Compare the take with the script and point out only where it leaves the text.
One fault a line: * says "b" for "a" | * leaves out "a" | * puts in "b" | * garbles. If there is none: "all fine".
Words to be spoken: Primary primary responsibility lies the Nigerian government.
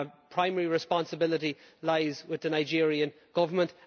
* leaves out "primary"
* puts in "with"